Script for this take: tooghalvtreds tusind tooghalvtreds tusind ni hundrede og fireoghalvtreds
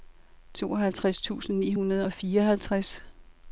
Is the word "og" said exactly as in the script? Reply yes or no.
yes